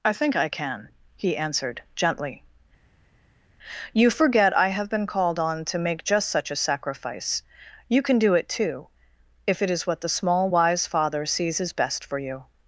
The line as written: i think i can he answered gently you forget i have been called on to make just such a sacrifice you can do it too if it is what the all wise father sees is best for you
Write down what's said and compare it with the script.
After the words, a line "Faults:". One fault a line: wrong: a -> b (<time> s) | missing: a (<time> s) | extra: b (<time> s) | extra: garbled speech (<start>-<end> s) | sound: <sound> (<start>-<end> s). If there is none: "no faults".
i think i can he answered gently you forget i have been called on to make just such a sacrifice you can do it too if it is what the small wise father sees is best for you
Faults:
wrong: all -> small (10.2 s)